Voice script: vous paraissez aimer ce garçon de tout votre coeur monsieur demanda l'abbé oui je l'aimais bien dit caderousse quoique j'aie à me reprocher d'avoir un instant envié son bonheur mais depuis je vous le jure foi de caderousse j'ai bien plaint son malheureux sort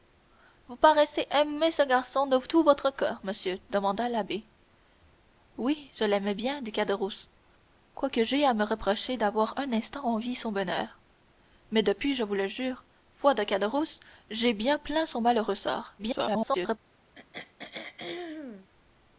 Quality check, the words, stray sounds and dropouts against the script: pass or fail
fail